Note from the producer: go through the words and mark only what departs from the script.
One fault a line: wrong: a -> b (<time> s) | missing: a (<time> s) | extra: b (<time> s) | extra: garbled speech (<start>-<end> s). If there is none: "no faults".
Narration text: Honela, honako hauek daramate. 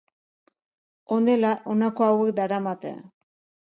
no faults